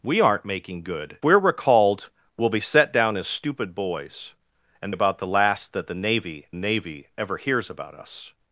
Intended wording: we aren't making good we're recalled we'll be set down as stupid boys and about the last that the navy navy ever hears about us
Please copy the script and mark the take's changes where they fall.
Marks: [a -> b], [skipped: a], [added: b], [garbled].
we aren't making good we're recalled we'll be set down as stupid boys and about the last that the navy navy ever hears about us